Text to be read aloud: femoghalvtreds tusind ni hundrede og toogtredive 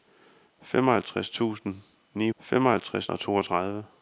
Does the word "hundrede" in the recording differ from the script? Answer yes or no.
yes